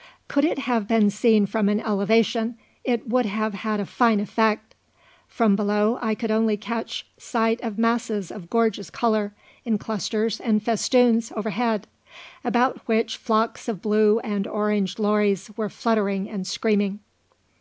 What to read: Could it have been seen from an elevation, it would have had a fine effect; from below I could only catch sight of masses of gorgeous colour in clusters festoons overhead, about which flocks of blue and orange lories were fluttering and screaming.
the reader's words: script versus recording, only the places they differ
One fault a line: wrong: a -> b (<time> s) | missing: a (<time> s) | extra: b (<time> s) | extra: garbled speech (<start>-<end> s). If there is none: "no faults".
extra: and (10.4 s)